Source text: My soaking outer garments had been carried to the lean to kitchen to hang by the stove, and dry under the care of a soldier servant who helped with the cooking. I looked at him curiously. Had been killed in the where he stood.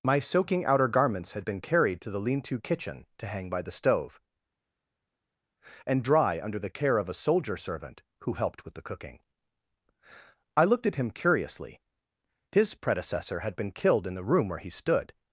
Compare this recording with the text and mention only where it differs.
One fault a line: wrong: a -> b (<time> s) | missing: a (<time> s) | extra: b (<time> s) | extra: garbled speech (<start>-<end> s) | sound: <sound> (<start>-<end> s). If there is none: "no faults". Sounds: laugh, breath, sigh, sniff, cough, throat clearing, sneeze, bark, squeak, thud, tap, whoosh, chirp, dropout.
extra: His predecessor (12.5 s)
extra: room (14.2 s)